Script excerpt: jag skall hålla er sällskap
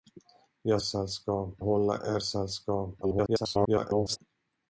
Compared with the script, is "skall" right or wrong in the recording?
wrong